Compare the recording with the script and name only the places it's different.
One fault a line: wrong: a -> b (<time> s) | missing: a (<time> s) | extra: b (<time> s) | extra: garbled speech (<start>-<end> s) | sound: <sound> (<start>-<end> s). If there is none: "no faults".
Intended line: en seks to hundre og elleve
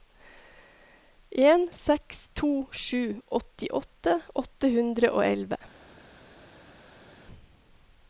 extra: sju åttiåtte åtte (2.8 s)